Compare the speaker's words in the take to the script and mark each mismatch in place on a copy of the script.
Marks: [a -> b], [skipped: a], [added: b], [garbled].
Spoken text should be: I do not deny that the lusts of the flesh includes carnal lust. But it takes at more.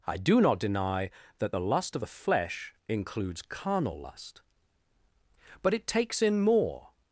I do not deny that the [lusts -> lust] of the flesh includes carnal lust. But it takes [at -> in] more.